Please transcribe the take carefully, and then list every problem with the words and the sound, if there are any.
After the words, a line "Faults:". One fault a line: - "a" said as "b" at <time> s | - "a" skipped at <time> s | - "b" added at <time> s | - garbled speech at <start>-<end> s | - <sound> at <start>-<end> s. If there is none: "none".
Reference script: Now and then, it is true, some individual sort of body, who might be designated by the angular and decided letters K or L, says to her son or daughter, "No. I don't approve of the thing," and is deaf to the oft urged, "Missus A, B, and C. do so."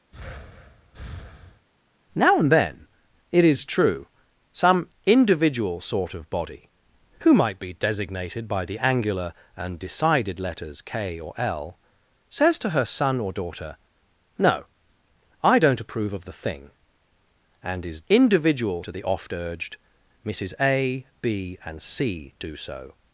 Now and then, it is true, some individual sort of body, who might be designated by the angular and decided letters K or L, says to her son or daughter, "No. I don't approve of the thing," and is individual to the oft urged, "Missus A, B, and C. do so."
Faults:
- breath at 0.1-1.7 s
- "deaf" said as "individual" at 18.1 s